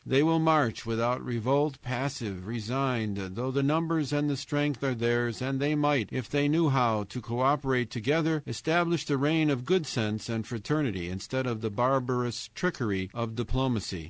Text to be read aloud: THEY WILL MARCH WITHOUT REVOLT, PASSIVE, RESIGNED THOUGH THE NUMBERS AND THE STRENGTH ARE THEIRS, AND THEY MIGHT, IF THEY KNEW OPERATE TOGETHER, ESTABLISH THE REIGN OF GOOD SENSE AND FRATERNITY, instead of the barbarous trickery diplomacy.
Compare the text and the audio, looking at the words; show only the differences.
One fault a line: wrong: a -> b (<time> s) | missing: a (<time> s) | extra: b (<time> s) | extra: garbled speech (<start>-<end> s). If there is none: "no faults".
extra: HOW TO CO (6.7 s)
extra: of (13.1 s)